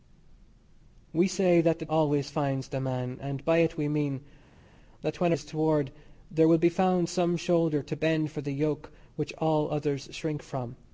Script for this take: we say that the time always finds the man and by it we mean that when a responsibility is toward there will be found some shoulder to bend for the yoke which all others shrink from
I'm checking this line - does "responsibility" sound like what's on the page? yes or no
no